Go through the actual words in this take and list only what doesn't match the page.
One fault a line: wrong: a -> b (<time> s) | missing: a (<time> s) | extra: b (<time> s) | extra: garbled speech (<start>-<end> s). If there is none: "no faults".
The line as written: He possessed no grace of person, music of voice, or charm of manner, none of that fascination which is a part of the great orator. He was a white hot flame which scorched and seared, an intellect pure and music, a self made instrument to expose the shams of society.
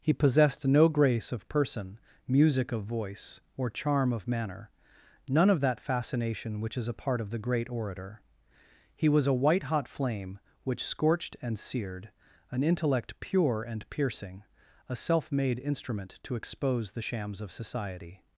wrong: music -> piercing (13.9 s)